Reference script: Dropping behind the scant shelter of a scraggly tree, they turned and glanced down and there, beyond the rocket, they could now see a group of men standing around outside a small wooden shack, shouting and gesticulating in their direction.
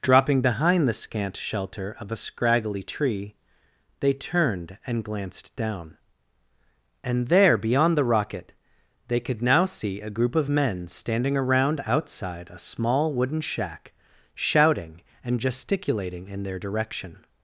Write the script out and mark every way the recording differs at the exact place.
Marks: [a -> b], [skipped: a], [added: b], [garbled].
Dropping behind the scant shelter of a scraggly tree, they turned and glanced down and there, beyond the rocket, they could now see a group of men standing around outside a small wooden shack, shouting and gesticulating in their direction.